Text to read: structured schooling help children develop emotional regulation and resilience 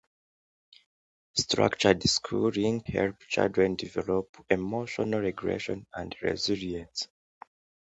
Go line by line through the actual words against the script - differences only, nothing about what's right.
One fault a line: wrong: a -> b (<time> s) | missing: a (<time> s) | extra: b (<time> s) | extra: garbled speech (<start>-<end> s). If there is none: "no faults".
no faults